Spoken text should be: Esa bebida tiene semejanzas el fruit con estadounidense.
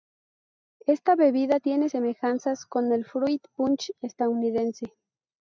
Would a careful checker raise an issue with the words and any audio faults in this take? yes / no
yes